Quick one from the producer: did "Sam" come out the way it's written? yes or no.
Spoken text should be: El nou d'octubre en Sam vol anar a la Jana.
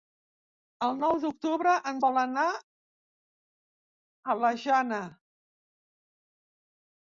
no